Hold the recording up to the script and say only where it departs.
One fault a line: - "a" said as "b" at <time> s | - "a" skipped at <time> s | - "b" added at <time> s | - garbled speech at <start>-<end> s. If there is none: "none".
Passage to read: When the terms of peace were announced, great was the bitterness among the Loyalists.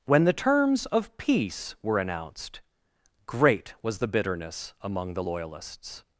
none